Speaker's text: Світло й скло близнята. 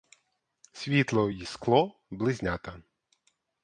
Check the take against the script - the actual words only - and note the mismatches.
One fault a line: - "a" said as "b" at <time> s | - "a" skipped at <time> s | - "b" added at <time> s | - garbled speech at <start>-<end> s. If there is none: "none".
none